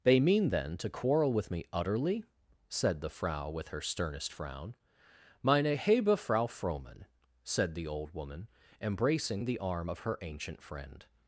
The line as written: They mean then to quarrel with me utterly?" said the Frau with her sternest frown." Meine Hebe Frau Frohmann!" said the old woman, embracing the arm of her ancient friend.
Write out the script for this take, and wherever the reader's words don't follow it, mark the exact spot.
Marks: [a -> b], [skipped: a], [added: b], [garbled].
They mean then to quarrel with me utterly?" said the Frau with her sternest frown." Meine Hebe Frau Frohmann!" said the old woman, embracing the arm of her ancient friend.